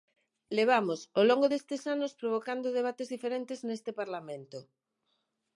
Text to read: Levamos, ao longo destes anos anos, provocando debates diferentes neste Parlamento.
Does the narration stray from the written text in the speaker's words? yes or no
yes